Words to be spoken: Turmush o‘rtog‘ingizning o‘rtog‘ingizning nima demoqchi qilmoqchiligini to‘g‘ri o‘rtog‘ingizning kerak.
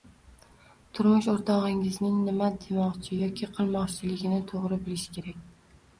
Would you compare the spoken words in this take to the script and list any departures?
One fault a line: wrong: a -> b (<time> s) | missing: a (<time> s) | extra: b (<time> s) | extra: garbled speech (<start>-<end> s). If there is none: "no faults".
missing: o‘rtog‘ingizning (2.1 s)
extra: yoki (3.2 s)
wrong: o‘rtog‘ingizning -> bilish (4.9 s)